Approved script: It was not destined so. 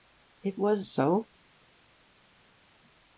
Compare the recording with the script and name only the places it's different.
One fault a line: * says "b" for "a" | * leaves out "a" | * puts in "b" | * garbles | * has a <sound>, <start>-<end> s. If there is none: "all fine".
* leaves out "not destined"